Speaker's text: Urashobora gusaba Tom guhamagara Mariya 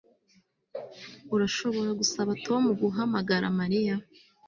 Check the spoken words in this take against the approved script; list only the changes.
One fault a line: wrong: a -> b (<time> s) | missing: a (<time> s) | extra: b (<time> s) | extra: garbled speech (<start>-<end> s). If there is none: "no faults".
no faults